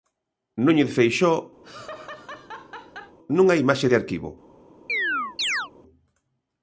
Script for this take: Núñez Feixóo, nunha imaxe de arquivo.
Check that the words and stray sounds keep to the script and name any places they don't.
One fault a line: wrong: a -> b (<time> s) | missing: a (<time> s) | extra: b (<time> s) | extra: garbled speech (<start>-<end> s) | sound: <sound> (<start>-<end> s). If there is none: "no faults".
sound: laugh (1.6-3.2 s)
sound: chirp (4.9-5.7 s)